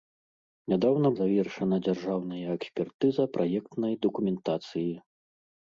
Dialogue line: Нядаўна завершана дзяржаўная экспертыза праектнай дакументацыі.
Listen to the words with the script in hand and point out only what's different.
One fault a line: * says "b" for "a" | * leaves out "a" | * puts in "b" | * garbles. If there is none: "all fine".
all fine